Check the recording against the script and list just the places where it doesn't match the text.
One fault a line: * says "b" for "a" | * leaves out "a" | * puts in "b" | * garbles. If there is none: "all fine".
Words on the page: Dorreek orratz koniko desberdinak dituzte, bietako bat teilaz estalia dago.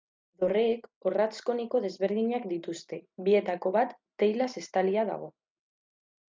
all fine